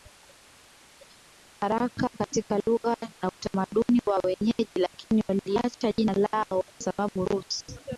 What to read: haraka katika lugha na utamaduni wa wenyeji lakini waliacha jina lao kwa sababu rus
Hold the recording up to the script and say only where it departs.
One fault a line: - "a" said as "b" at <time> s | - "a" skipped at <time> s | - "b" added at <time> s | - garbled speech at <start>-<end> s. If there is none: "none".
- "kwa" skipped at 6.6 s